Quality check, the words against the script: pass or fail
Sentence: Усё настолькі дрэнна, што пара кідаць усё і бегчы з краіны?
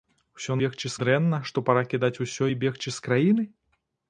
fail